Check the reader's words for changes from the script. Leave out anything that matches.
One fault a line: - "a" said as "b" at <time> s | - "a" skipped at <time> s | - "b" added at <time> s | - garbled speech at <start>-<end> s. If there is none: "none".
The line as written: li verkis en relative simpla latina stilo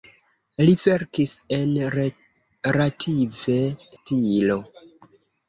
- "simpla latina" skipped at 3.6 s